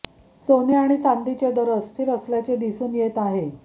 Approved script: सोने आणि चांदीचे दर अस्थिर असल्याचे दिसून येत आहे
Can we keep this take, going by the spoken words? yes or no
yes